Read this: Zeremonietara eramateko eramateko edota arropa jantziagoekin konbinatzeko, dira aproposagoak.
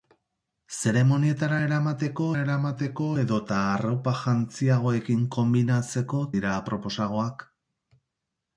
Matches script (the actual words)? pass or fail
pass